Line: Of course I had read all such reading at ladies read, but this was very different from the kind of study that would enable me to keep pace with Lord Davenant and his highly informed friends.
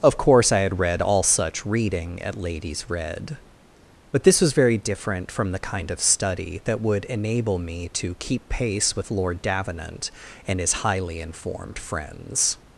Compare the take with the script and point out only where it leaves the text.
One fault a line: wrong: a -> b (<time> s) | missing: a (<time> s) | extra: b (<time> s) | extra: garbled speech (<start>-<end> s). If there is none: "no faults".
no faults